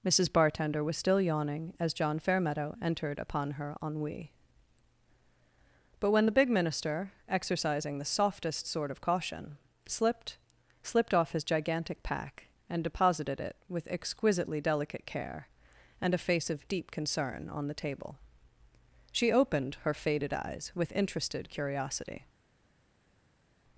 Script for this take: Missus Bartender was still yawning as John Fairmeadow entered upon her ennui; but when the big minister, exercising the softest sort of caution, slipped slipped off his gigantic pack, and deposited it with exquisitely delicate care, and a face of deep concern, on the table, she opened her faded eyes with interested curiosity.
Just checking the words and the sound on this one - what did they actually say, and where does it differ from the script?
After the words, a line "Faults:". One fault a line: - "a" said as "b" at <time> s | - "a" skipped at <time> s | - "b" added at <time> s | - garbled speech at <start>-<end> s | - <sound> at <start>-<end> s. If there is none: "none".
Missus Bartender was still yawning as John Fairmeadow entered upon her ennui; but when the big minister, exercising the softest sort of caution, slipped slipped off his gigantic pack, and deposited it with exquisitely delicate care, and a face of deep concern, on the table, she opened her faded eyes with interested curiosity.
Faults:
none